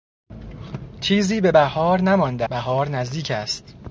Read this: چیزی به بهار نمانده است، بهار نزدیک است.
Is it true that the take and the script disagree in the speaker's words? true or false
true